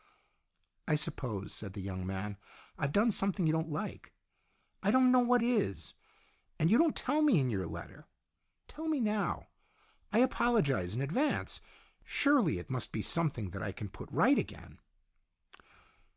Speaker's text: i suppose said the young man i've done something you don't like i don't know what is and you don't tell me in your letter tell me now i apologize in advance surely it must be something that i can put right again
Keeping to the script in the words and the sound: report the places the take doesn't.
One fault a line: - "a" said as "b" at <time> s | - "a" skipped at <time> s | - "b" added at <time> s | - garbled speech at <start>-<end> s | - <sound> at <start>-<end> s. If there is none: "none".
none